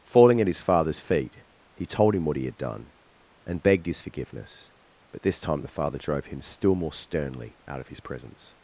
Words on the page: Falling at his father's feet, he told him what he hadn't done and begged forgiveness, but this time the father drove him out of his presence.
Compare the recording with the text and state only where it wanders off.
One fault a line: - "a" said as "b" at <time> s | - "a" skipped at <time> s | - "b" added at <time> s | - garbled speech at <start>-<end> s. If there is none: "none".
- "hadn't" said as "had" at 2.5 s
- "his" added at 3.9 s
- "still more sternly" added at 6.4 s